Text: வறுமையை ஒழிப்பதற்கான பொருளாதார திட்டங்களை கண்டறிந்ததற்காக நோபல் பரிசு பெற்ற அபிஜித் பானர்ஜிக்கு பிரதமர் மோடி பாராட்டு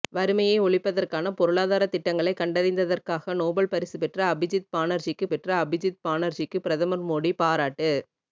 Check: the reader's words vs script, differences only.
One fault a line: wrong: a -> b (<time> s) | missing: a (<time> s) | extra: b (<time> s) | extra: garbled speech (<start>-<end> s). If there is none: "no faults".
extra: பெற்ற அபிஜித் பானர்ஜிக்கு (5.3 s)